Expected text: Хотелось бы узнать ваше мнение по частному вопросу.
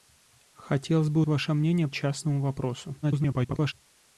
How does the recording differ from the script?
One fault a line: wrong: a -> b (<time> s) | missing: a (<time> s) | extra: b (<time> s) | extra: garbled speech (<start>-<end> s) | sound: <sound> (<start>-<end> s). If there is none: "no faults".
missing: узнать (1.2 s)
missing: по (1.9 s)
extra: garbled speech (3.0-3.7 s)